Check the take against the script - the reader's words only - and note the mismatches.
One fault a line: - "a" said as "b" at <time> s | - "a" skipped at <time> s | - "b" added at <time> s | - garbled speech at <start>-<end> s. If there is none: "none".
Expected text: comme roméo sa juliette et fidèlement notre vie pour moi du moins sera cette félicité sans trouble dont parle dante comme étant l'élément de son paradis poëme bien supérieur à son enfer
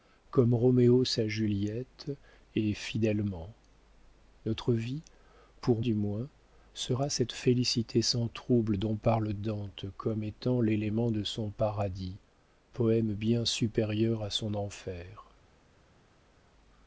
- "moi" skipped at 5.8 s